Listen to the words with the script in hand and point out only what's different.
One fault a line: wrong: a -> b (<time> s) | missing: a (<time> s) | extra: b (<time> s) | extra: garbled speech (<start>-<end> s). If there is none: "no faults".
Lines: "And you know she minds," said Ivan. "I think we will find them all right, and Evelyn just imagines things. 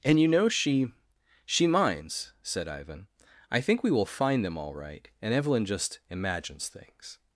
extra: she (1.4 s)